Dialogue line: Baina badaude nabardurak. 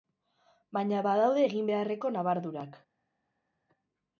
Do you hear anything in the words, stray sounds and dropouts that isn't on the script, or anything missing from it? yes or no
yes